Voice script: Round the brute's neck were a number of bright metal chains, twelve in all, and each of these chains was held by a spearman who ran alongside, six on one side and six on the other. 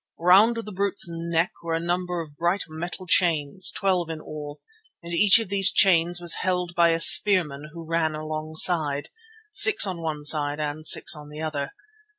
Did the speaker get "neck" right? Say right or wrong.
right